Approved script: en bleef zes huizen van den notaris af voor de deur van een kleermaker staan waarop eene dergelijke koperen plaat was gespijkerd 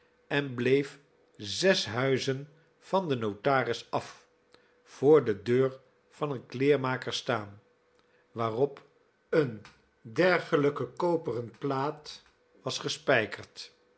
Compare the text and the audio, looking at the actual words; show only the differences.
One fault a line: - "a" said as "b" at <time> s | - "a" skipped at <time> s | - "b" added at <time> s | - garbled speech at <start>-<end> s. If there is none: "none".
none